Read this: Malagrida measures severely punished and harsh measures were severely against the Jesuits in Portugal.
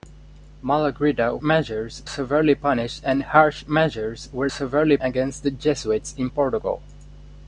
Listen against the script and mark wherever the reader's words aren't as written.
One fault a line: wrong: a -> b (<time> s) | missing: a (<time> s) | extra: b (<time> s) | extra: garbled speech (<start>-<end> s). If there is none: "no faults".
no faults